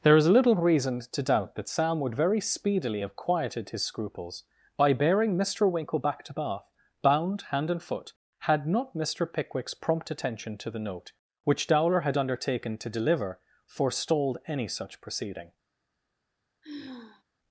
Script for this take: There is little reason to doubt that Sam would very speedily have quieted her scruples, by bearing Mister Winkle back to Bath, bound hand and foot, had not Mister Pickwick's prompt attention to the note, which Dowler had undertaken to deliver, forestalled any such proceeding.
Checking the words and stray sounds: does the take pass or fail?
fail